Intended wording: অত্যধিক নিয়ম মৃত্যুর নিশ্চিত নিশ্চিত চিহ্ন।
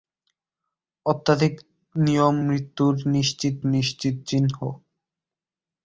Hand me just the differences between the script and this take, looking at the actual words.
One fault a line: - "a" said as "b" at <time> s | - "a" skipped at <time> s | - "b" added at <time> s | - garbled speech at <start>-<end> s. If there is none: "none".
none